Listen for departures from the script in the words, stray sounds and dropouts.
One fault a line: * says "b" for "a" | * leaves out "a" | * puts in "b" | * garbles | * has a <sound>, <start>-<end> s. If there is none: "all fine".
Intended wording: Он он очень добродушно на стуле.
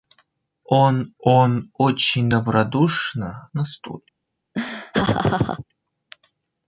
* has a laugh, 4.5-5.6 s